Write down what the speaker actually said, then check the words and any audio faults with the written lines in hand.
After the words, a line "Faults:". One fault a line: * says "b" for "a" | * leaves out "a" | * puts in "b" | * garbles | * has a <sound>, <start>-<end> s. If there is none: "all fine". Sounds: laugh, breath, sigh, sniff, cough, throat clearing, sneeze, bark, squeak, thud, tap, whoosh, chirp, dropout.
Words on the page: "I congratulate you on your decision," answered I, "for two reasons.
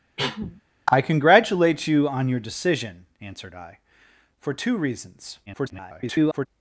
"I congratulate you on your decision," answered I, "for two reasons. [garbled]
Faults:
* has a cough, 0.2-0.6 s
* garbles